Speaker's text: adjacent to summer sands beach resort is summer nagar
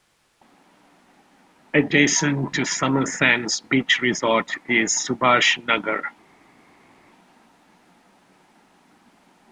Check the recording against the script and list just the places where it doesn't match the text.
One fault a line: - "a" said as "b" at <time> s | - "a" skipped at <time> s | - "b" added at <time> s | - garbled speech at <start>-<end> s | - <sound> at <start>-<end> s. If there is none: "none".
- "summer" said as "subhash" at 4.9 s